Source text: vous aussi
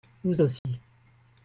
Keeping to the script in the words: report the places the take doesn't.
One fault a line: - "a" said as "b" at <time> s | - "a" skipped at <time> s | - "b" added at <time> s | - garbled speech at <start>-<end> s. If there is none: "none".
none